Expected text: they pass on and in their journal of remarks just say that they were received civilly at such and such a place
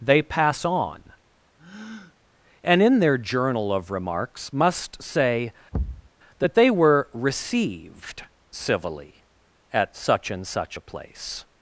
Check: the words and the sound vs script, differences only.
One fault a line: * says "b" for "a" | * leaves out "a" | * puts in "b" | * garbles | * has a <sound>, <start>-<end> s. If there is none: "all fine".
* has a breath, 1.6-2.2 s
* says "must" for "just"
* has a thud, 5.7-6.1 s